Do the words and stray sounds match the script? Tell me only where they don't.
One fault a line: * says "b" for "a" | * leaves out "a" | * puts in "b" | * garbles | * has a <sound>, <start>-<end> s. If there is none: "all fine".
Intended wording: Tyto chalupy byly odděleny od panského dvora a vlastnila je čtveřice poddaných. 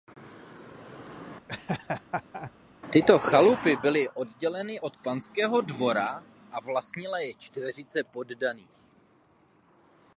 * has a laugh, 1.5-2.5 s